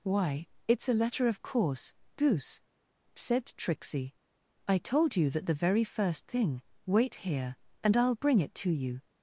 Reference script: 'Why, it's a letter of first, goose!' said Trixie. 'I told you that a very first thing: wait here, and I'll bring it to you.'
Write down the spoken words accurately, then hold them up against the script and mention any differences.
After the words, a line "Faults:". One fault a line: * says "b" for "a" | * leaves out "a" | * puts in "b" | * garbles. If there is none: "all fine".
'Why, it's a letter of course, goose!' said Trixie. 'I told you that the very first thing: wait here, and I'll bring it to you.'
Faults:
* says "course" for "first"
* says "the" for "a"